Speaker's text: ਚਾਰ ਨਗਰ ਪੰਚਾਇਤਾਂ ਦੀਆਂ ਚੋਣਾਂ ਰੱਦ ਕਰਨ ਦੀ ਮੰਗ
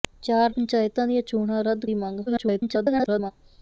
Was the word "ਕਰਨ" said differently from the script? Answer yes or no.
yes